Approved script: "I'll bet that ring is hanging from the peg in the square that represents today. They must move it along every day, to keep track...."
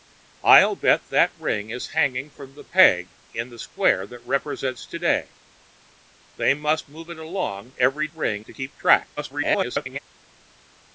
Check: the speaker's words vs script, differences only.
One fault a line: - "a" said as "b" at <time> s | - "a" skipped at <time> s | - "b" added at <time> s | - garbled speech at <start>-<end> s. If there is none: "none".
- "day" said as "ring" at 8.1 s
- garbled speech at 9.2-10.0 s